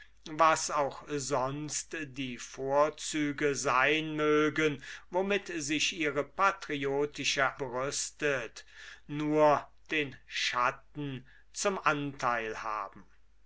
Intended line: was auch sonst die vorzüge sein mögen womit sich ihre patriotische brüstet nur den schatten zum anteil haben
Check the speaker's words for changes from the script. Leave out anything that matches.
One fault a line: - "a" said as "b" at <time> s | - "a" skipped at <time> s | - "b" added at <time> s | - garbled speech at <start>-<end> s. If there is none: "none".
none